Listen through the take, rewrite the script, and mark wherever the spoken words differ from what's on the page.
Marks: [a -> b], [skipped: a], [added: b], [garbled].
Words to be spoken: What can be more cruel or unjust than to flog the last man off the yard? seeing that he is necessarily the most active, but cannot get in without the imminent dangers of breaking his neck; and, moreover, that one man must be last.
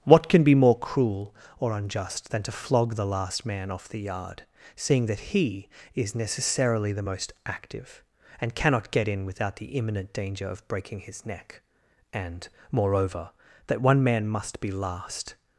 What can be more cruel or unjust than to flog the last man off the yard? seeing that he is necessarily the most active, [but -> and] cannot get in without the imminent [dangers -> danger] of breaking his neck; and, moreover, that one man must be last.